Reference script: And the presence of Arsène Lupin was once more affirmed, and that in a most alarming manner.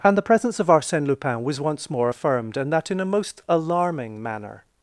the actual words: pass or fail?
pass